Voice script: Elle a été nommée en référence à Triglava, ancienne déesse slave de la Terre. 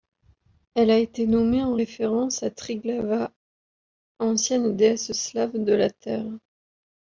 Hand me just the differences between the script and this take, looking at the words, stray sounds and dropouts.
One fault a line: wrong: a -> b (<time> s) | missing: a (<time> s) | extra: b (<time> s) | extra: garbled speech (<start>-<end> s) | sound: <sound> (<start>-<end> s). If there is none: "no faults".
no faults